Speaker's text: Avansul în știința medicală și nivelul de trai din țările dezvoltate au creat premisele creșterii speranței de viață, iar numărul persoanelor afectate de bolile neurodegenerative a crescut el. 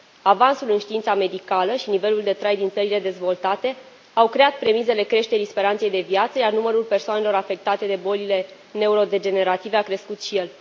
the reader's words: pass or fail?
fail